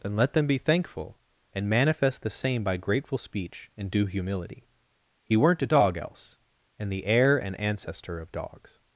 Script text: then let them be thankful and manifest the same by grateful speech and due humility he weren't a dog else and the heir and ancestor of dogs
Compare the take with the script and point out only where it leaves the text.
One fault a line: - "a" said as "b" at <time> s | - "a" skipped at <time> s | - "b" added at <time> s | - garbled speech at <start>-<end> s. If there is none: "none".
none